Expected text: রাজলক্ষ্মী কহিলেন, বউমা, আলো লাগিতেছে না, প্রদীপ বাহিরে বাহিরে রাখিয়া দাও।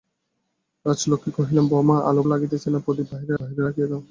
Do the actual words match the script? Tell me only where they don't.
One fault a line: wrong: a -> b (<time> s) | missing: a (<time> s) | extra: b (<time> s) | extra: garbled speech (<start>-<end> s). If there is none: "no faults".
no faults